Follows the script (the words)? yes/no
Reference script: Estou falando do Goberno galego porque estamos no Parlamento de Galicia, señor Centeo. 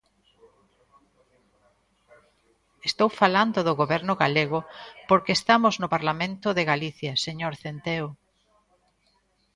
yes